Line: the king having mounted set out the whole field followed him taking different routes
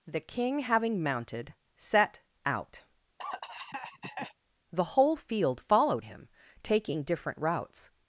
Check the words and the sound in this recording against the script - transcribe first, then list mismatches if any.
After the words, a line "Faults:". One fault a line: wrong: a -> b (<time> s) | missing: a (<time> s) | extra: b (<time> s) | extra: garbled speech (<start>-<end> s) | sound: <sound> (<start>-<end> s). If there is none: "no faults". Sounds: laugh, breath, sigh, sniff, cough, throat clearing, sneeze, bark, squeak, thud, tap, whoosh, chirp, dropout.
the king having mounted set out the whole field followed him taking different routes
Faults:
sound: cough (3.2-4.3 s)